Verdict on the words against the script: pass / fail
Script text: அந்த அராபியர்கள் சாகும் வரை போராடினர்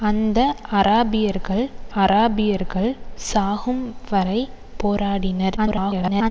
fail